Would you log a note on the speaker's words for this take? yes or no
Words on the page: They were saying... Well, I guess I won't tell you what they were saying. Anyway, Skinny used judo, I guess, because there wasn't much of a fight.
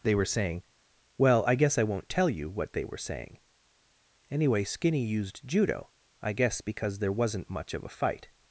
no